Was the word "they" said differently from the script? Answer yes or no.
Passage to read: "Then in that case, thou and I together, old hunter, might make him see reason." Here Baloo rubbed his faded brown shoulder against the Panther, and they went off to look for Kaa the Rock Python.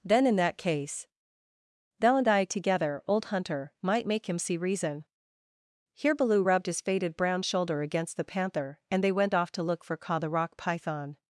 no